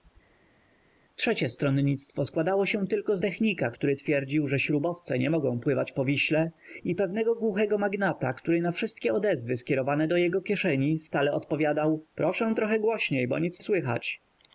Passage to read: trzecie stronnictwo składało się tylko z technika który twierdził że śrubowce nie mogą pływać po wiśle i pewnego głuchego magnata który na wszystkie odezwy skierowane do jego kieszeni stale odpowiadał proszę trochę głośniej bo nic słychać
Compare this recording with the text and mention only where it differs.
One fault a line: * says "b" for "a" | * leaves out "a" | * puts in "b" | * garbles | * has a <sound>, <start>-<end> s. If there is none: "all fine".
all fine